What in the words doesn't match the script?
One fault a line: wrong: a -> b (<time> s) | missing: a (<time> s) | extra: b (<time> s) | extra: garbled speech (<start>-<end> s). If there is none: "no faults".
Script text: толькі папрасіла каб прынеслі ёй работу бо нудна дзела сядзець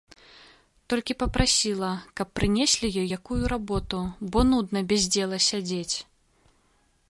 extra: якую (3.2 s)
extra: без (4.9 s)